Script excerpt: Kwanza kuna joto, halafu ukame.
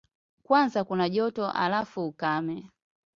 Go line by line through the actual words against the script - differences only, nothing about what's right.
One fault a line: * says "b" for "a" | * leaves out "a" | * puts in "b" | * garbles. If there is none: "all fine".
all fine